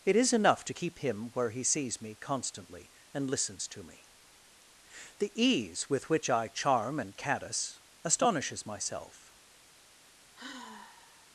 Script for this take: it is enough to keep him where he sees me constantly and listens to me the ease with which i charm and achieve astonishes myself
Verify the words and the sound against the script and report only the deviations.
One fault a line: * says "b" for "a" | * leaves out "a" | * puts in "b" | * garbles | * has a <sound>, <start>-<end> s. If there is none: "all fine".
* says "caddis" for "achieve"
* has a sigh, 10.3-11.3 s